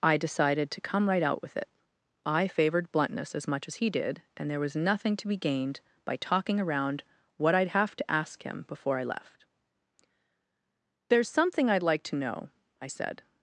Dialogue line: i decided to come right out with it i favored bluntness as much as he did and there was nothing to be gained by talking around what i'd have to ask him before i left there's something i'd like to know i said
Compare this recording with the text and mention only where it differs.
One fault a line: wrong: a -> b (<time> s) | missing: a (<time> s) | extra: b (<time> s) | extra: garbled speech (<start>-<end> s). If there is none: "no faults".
no faults